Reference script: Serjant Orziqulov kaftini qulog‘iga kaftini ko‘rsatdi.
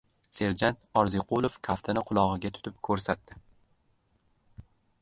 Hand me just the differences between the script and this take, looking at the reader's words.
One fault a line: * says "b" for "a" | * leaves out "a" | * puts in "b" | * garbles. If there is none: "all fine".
* says "tutib" for "kaftini"